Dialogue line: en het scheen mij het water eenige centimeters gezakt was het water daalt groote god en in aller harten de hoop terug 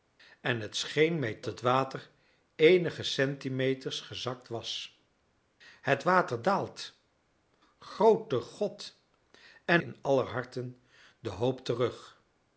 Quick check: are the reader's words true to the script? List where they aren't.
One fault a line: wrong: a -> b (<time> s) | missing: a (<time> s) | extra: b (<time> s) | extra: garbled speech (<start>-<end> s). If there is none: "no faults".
no faults